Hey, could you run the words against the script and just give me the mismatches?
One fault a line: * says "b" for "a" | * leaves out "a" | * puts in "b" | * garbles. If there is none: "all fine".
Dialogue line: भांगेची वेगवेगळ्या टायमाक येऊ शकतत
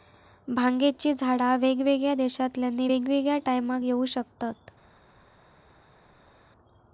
* puts in "झाडा वेगवेगळ्या देशांतल्यानी"